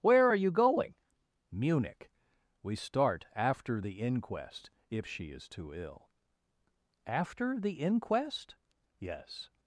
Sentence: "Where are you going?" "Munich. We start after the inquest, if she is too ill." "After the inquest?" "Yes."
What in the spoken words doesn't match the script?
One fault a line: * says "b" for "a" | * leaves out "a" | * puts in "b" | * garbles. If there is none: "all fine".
all fine